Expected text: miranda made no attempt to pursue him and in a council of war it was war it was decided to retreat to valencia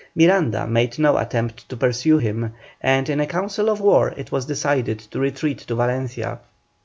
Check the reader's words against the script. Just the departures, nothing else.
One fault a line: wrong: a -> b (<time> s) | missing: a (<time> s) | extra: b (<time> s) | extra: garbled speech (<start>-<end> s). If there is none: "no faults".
missing: war it was (4.4 s)